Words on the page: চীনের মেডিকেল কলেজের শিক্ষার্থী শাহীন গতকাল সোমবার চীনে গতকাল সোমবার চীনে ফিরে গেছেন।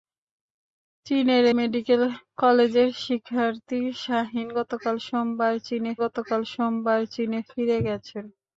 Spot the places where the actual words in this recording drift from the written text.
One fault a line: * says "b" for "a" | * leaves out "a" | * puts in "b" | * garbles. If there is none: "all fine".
all fine